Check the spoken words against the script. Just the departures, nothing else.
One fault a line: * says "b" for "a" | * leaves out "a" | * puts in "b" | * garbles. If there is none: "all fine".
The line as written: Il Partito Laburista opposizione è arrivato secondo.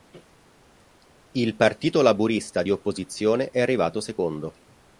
* puts in "di"